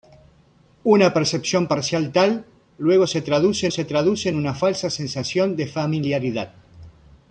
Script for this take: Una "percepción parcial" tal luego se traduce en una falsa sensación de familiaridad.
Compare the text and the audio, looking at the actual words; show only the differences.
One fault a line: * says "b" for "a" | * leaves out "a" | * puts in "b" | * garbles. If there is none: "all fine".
* puts in "se traduce"